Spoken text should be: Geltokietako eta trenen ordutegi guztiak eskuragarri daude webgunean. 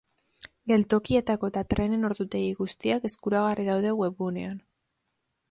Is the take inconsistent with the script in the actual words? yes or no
no